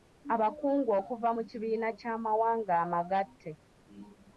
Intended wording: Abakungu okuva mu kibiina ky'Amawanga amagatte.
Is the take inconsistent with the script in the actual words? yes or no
no